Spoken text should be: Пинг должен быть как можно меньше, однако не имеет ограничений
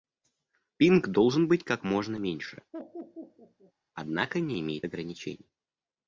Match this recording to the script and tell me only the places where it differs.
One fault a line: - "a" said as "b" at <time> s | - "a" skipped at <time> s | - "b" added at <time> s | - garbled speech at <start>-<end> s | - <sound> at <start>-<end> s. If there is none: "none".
- laugh at 2.7-3.7 s